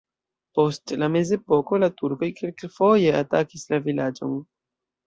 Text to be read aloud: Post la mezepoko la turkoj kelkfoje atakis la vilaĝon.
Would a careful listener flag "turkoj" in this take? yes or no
no